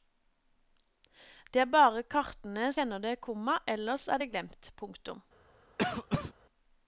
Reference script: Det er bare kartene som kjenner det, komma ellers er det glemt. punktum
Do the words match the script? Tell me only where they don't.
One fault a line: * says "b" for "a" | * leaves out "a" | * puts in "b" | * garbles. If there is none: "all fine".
* leaves out "som"